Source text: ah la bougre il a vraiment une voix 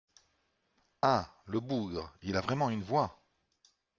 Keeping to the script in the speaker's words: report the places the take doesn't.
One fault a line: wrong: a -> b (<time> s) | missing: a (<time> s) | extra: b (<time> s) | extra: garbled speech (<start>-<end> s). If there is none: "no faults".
wrong: la -> le (1.4 s)